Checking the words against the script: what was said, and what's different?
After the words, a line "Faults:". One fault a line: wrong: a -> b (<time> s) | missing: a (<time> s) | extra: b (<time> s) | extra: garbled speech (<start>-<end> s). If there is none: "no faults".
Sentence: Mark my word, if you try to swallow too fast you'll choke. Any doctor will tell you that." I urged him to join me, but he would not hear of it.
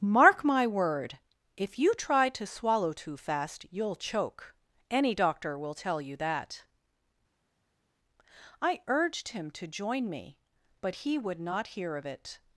Mark my word, if you try to swallow too fast you'll choke. Any doctor will tell you that." I urged him to join me, but he would not hear of it.
Faults:
no faults